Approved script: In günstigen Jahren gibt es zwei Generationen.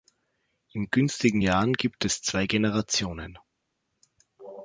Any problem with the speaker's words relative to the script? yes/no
no